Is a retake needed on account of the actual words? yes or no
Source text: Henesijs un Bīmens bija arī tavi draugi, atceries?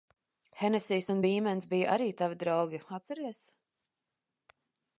no